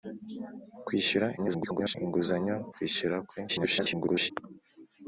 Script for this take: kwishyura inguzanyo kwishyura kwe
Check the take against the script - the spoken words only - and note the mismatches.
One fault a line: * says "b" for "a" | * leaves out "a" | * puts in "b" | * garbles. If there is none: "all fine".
* garbles
* garbles